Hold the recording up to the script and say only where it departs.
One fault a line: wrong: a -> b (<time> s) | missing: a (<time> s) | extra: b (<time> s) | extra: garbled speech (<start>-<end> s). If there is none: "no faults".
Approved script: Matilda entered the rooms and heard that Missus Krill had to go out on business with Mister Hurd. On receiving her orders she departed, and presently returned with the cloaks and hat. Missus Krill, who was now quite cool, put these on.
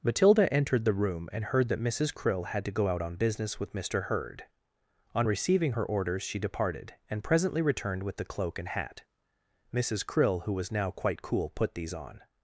wrong: rooms -> room (0.9 s)
wrong: cloaks -> cloak (8.2 s)